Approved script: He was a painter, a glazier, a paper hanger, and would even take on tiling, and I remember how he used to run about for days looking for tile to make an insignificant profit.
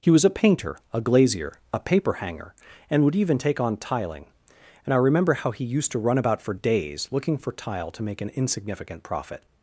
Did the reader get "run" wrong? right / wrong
right